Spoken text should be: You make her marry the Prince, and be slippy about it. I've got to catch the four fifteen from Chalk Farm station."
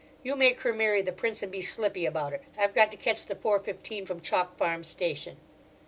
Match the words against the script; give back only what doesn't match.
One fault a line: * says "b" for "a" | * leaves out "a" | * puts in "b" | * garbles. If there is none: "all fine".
all fine